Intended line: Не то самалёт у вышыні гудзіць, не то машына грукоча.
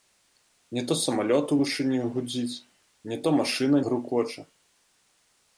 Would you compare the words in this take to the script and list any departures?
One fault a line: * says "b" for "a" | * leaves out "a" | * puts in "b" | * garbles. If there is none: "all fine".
all fine